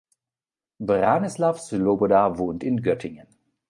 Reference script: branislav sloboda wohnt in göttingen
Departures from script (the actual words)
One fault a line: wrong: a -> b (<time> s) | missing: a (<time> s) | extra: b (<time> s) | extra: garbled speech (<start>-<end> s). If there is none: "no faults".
no faults